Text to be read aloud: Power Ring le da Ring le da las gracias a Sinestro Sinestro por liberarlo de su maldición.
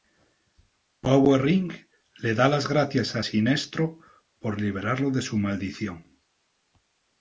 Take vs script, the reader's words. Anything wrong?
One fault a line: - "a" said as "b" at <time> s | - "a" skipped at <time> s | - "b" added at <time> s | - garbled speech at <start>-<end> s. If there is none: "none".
- "Ring le da" skipped at 2.5 s
- "Sinestro" skipped at 4.0 s